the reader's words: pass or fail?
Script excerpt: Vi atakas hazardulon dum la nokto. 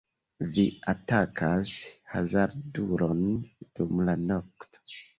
pass